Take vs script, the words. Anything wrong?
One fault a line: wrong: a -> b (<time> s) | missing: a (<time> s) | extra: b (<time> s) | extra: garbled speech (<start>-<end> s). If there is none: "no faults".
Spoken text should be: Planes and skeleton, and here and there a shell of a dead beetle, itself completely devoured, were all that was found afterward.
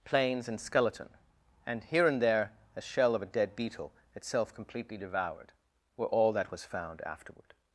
no faults